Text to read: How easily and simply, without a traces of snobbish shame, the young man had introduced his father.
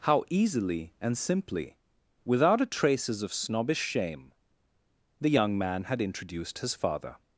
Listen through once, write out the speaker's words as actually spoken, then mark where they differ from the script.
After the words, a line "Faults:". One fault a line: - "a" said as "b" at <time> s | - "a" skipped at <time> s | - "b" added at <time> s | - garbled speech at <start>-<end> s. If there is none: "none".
How easily and simply, without a traces of snobbish shame, the young man had introduced his father.
Faults:
none